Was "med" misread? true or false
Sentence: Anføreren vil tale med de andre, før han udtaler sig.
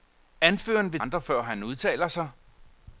true